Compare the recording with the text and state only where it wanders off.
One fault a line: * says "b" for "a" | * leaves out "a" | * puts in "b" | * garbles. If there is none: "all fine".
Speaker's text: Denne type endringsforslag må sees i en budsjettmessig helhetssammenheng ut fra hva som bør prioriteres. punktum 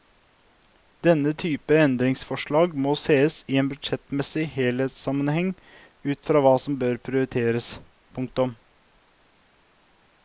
all fine